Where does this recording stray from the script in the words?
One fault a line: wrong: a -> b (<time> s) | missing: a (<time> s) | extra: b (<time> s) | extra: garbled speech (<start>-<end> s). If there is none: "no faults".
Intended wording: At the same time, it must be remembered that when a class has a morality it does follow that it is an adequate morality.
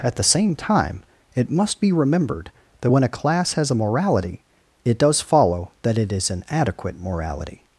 no faults